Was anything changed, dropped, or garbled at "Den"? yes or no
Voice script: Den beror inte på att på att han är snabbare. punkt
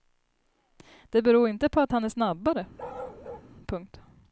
yes